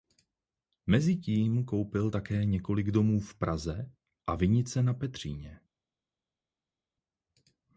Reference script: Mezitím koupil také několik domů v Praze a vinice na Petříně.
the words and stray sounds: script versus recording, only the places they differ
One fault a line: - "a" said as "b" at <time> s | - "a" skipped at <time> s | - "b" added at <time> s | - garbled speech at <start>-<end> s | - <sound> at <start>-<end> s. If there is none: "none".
none